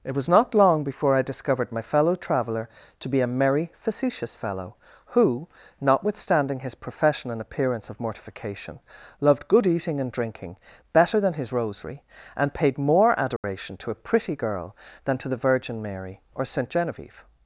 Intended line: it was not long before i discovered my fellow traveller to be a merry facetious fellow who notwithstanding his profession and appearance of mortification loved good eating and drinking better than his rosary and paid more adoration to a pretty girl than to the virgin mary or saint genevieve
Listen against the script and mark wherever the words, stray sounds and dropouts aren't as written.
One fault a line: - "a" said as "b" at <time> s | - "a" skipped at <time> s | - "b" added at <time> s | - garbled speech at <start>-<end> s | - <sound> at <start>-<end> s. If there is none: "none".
- dropout at 13.4-13.4 s